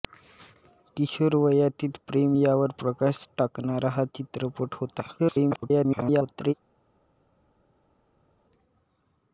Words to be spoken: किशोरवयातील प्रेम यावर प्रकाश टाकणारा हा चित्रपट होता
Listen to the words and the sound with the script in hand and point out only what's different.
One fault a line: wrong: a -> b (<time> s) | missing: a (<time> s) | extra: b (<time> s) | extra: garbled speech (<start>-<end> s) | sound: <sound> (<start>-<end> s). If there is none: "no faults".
extra: garbled speech (5.2-6.5 s)